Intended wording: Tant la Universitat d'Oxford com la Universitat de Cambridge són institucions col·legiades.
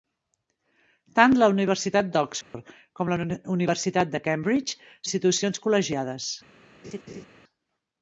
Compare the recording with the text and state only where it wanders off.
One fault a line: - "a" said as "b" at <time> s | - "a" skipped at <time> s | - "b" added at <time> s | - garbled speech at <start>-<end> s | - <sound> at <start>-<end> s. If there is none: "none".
- dropout at 2.4-2.5 s
- "són" skipped at 4.9 s
- laugh at 6.8-7.3 s